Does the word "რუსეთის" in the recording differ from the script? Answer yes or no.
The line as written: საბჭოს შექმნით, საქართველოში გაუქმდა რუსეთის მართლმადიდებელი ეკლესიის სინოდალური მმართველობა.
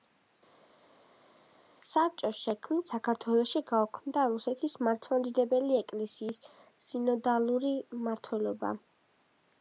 no